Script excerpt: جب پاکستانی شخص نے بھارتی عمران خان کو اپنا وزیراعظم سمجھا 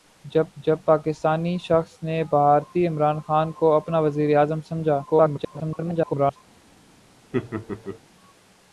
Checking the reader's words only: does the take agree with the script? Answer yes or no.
no